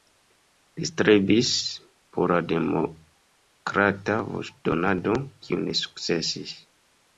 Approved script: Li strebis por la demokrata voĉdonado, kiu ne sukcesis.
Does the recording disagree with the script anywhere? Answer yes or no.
no